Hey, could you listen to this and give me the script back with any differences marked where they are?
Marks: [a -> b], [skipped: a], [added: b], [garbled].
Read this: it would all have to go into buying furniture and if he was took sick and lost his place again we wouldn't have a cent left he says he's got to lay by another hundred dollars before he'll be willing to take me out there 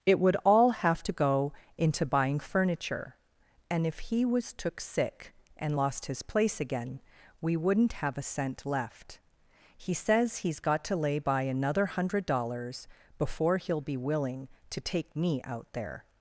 it would all have to go into buying furniture and if he was took sick and lost his place again we wouldn't have a cent left he says he's got to lay by another hundred dollars before he'll be willing to take me out there